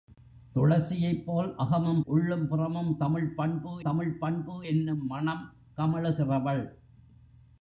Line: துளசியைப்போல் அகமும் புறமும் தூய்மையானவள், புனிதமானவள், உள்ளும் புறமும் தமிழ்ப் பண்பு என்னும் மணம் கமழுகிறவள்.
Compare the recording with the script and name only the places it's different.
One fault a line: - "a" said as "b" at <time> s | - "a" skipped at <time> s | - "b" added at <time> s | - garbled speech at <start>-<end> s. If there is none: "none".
- "உள்ளும்" added at 2.0 s
- "தூய்மையானவள் புனிதமானவள் உள்ளும் புறமும்" said as "தமிழ்ப் பண்பு" at 3.0 s